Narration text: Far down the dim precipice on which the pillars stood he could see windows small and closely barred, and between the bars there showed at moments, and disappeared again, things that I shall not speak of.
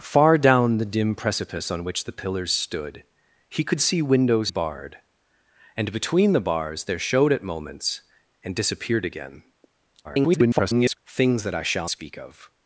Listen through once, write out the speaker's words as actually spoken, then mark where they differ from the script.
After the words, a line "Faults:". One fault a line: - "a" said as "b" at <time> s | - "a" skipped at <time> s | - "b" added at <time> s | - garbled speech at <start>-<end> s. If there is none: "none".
Far down the dim precipice on which the pillars stood he could see windows barred, and between the bars there showed at moments, and disappeared again, [garbled] things that I shall speak of.
Faults:
- "small and closely" skipped at 4.5 s
- garbled speech at 10.0-11.0 s
- "not" skipped at 11.9 s